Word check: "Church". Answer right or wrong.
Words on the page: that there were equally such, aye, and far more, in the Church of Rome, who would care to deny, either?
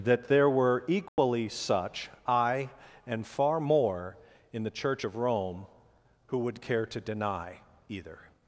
right